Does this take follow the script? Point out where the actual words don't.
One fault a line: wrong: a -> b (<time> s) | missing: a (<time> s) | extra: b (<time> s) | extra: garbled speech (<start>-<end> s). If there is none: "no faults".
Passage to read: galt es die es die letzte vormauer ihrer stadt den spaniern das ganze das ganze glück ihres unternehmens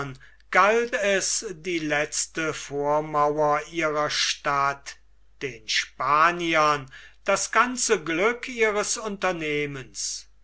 missing: es die (1.8 s)
missing: das ganze (8.0 s)